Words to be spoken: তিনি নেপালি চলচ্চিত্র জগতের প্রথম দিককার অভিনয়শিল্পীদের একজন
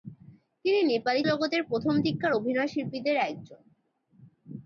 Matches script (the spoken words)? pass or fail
fail